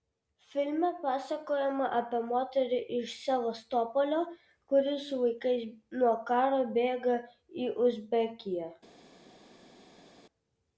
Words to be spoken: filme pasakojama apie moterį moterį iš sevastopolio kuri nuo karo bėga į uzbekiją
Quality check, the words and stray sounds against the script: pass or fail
fail